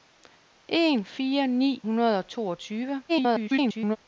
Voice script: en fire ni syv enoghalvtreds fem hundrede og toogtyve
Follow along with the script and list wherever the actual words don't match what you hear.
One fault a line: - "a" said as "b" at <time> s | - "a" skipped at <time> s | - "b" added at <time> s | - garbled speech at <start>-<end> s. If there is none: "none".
- "syv enoghalvtreds fem" skipped at 1.8 s
- garbled speech at 3.1-4.0 s